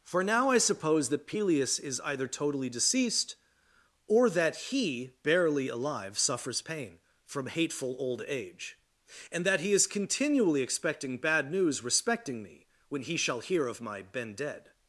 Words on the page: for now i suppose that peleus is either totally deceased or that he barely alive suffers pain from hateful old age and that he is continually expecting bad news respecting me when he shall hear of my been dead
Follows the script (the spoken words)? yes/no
yes